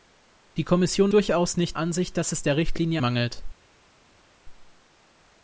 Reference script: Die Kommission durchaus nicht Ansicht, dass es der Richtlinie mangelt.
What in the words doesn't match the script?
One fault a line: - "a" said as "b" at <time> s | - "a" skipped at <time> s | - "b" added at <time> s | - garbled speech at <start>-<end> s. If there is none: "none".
none